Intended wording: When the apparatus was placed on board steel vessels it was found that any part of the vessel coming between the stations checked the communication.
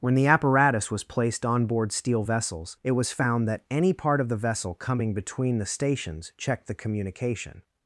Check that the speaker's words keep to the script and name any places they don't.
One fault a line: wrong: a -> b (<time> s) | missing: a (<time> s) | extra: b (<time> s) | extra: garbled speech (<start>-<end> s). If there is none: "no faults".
no faults